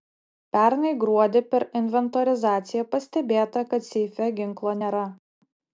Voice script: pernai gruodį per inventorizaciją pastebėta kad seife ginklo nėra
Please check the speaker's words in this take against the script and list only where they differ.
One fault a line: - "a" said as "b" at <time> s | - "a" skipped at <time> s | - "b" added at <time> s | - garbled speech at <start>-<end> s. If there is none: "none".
none